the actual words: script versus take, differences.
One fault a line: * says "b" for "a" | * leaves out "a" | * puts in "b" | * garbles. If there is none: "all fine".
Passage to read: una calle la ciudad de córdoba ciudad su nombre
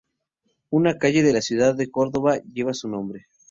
* puts in "de"
* says "lleva" for "ciudad"